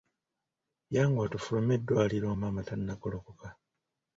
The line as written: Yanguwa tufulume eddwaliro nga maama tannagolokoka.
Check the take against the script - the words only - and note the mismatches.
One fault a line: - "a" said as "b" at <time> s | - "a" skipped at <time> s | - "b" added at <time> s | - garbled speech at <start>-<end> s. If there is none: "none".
- "nga" skipped at 2.3 s